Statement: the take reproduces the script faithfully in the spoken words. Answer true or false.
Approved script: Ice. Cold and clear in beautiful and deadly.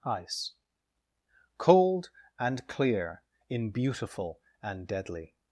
true